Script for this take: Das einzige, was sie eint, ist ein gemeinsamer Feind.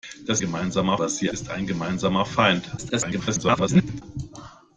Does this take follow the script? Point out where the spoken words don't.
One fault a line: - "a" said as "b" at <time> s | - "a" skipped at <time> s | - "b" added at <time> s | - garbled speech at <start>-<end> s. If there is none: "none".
- "einzige" said as "gemeinsamer" at 0.4 s
- "eint" skipped at 1.3 s
- garbled speech at 2.8-4.0 s